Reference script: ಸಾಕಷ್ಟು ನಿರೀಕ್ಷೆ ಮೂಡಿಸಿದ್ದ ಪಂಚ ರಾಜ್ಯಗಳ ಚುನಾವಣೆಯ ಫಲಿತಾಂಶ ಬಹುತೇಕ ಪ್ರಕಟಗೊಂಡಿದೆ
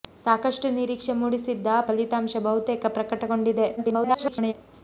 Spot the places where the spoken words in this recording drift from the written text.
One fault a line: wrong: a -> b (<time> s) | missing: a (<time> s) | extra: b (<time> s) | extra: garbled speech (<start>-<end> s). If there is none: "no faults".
missing: ಪಂಚ ರಾಜ್ಯಗಳ ಚುನಾವಣೆಯ (1.7 s)
extra: garbled speech (3.8-4.5 s)